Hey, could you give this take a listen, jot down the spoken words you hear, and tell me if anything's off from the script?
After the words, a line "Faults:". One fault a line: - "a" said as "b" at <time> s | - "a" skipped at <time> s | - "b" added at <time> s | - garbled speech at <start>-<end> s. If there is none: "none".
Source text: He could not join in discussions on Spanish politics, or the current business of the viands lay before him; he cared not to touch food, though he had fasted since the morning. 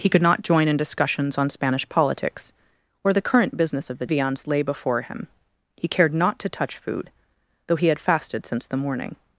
He could not join in discussions on Spanish politics, or the current business of the viands lay before him; he cared not to touch food, though he had fasted since the morning.
Faults:
none